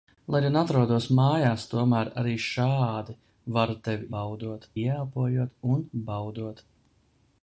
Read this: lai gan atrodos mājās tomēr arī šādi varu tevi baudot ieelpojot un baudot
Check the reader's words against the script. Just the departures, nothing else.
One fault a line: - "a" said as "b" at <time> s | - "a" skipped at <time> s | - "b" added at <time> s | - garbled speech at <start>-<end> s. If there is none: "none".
none